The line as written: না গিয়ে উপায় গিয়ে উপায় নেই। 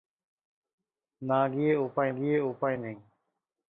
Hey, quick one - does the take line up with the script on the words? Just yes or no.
yes